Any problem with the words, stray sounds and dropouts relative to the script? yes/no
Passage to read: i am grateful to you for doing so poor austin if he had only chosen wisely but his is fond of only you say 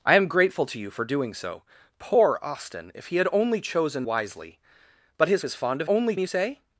no